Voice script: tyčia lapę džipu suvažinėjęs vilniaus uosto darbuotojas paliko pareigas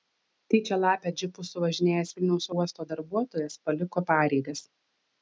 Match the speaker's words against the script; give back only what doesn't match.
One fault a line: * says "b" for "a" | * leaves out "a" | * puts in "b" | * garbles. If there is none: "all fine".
all fine